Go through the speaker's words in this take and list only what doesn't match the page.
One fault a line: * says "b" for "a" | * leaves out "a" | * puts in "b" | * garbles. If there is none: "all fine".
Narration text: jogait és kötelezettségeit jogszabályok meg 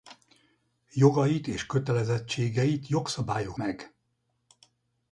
all fine